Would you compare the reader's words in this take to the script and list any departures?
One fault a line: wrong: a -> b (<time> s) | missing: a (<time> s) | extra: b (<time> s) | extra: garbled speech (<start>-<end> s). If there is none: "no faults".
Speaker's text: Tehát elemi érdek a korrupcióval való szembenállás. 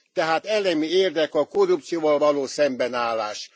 no faults